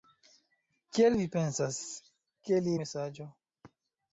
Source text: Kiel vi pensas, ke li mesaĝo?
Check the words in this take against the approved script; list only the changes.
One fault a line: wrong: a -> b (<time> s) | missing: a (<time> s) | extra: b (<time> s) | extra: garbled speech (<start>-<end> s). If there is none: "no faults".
no faults